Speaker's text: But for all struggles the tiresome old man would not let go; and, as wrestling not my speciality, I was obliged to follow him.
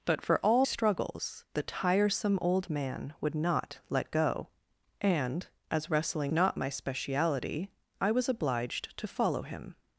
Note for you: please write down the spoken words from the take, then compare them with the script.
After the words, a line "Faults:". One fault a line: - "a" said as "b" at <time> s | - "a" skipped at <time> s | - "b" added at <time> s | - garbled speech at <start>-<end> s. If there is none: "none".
But for all struggles the tiresome old man would not let go; and, as wrestling not my speciality, I was obliged to follow him.
Faults:
none